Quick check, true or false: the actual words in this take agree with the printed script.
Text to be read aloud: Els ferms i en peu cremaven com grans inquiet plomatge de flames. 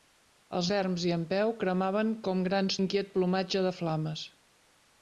true